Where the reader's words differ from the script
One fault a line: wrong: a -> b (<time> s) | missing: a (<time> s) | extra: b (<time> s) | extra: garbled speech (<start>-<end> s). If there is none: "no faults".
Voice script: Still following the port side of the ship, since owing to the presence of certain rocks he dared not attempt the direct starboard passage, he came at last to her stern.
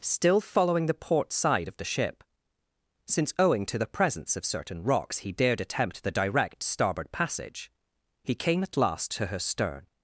missing: not (5.6 s)